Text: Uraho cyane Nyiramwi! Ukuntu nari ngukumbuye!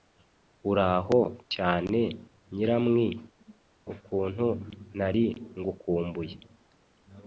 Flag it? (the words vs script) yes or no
no